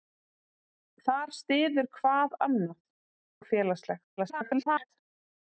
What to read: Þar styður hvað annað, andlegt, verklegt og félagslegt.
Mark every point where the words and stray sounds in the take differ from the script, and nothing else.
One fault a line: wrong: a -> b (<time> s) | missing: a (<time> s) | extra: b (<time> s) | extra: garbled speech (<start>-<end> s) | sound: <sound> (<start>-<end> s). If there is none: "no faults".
missing: andlegt verklegt (2.8 s)
extra: garbled speech (4.2-4.9 s)